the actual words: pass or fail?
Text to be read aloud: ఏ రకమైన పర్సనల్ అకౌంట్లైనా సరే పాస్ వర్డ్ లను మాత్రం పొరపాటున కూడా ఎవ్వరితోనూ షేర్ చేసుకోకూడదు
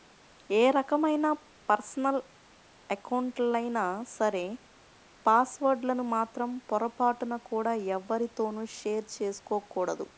pass